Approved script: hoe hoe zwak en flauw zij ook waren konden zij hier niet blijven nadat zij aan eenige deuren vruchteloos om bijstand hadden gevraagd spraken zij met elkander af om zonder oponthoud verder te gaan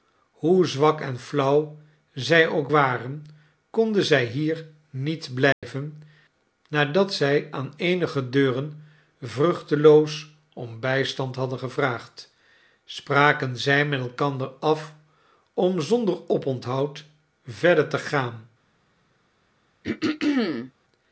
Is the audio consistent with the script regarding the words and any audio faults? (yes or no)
no